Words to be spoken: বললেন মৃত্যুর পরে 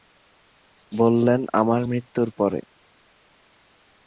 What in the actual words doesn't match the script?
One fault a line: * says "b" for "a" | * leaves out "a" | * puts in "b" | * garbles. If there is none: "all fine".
* puts in "আমার"